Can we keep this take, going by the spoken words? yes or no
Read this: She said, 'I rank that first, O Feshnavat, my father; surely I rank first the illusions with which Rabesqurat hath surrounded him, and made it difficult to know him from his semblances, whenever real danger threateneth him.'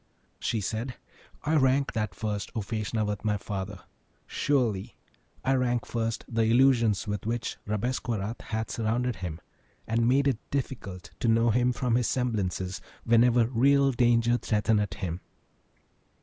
yes